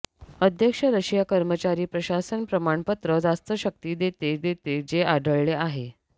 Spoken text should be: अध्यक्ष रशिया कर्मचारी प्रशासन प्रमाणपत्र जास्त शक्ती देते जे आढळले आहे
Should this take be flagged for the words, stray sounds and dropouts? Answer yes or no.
yes